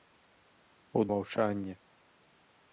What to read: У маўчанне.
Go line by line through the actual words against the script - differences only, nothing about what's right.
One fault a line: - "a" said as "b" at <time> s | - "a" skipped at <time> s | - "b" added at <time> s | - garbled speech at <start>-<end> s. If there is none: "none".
none